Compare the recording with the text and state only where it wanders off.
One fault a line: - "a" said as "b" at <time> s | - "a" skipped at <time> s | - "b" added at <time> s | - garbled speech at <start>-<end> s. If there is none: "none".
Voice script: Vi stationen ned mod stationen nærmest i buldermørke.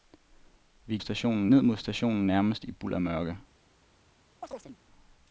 none